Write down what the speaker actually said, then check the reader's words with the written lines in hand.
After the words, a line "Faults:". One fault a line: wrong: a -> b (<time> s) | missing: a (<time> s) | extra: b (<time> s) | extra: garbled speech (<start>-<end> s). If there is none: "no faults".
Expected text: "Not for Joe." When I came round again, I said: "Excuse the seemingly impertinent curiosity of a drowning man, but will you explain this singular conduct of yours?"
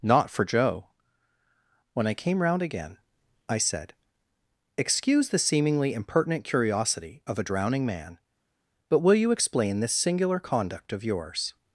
"Not for Joe." When I came round again, I said: "Excuse the seemingly impertinent curiosity of a drowning man, but will you explain this singular conduct of yours?"
Faults:
no faults